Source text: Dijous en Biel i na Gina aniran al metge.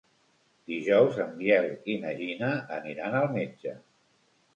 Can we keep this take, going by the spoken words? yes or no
yes